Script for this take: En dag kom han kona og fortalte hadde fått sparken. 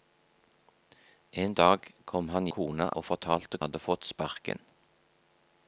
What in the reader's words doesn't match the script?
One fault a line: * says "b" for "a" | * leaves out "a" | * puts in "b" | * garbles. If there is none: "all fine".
all fine